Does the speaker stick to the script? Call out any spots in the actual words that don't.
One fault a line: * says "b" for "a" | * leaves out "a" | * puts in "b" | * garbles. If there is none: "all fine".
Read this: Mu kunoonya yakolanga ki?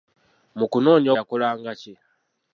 all fine